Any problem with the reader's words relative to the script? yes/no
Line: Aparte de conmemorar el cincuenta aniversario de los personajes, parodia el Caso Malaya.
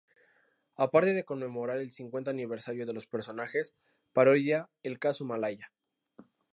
no